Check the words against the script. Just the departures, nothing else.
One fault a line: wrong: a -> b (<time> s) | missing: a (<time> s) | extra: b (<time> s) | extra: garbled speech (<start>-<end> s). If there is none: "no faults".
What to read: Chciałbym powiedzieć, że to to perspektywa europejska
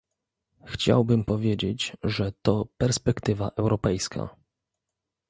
missing: to (2.7 s)